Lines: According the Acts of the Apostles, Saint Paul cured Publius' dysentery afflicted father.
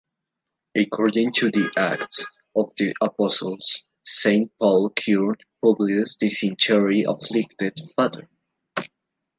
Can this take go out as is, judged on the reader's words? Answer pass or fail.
fail